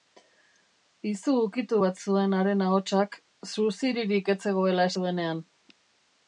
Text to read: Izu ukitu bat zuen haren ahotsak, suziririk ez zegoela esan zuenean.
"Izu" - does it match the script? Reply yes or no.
yes